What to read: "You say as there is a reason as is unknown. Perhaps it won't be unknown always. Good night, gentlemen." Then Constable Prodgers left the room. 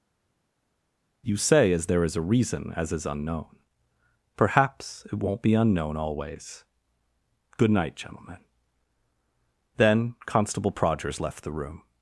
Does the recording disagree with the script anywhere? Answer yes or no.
no